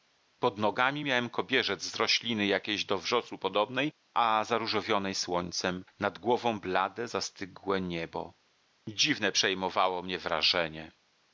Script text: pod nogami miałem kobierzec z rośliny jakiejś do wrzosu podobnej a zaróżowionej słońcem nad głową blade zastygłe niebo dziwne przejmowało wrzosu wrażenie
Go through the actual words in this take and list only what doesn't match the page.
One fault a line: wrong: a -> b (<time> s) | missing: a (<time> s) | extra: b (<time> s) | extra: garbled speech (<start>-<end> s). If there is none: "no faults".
wrong: wrzosu -> mnie (10.0 s)